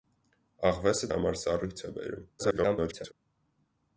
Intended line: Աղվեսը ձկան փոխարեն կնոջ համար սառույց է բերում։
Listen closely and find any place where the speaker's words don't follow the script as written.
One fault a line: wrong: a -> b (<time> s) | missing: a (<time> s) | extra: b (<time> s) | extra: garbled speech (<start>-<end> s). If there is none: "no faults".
missing: ձկան փոխարեն կնոջ (1.1 s)
extra: garbled speech (2.4-3.1 s)